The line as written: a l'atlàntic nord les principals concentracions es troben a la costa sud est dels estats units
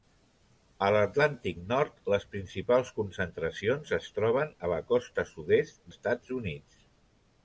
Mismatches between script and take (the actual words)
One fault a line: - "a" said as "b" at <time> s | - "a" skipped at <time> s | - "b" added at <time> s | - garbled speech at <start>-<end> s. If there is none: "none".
- "dels" skipped at 5.8 s